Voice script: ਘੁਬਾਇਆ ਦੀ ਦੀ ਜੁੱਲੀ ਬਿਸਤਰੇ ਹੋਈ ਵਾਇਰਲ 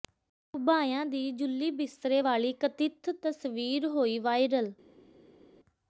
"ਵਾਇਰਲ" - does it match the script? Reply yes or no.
yes